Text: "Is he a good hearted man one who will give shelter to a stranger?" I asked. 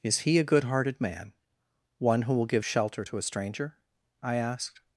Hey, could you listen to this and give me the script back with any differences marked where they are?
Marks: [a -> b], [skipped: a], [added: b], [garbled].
"Is he a good hearted man one who will give shelter to a stranger?" I asked.